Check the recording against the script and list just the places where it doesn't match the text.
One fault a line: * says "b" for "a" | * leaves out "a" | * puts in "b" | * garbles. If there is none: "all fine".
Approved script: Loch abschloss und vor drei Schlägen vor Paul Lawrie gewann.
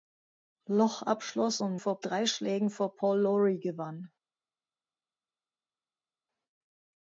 all fine